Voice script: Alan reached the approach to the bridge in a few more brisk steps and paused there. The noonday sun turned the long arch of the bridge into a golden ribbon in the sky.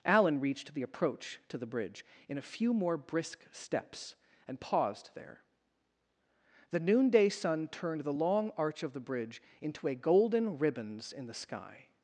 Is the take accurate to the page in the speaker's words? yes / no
no